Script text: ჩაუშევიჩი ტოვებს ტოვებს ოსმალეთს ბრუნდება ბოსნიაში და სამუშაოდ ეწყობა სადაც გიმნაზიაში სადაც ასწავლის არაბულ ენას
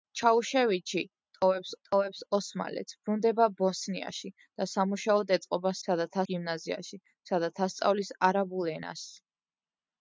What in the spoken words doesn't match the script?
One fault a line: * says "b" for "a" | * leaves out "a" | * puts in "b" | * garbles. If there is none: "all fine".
all fine